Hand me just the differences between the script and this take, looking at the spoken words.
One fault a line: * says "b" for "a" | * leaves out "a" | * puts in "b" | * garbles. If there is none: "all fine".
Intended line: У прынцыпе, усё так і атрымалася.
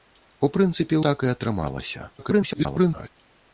* leaves out "усё"
* garbles